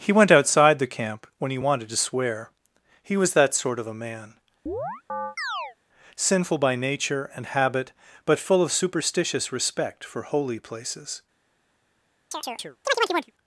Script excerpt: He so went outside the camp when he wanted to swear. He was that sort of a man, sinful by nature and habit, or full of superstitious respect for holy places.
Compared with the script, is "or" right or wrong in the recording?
wrong